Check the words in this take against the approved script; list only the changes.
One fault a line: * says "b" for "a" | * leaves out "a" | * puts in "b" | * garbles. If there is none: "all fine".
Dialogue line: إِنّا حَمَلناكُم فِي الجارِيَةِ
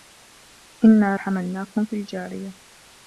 all fine